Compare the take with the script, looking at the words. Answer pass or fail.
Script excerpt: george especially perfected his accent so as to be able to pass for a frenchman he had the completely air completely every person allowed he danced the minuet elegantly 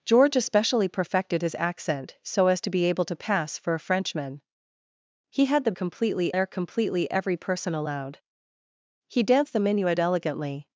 pass